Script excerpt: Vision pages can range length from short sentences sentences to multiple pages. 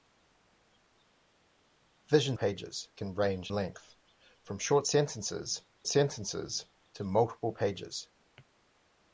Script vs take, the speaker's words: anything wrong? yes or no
no